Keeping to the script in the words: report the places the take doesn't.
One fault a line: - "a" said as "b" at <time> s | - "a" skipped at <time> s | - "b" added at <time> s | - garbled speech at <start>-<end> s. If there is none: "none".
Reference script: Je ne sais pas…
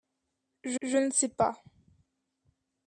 - "je" added at 0.8 s